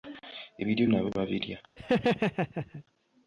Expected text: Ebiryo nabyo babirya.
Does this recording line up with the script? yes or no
yes